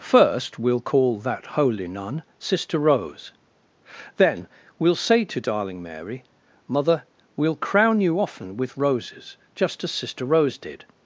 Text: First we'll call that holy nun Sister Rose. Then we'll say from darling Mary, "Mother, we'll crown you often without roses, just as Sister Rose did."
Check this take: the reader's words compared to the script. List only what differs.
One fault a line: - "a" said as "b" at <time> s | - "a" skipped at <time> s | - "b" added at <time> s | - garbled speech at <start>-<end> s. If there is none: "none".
- "from" said as "to" at 5.2 s
- "without" said as "with" at 8.6 s